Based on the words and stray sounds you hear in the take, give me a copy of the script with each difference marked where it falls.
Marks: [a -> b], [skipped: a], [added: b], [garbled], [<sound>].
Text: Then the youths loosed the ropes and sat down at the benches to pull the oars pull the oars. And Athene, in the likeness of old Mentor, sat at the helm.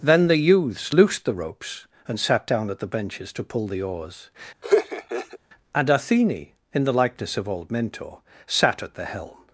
Then the youths loosed the ropes and sat down at the benches to pull the oars [skipped: pull the oars.] [laugh] And Athene, in the likeness of old Mentor, sat at the helm.